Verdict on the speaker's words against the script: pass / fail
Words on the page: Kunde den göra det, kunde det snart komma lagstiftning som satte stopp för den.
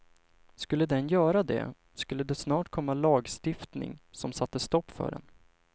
fail